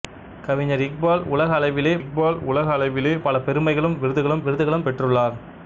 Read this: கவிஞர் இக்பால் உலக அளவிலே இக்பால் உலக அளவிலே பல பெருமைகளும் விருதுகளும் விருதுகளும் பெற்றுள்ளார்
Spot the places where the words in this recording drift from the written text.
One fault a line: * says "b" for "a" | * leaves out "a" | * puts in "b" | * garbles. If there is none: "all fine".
all fine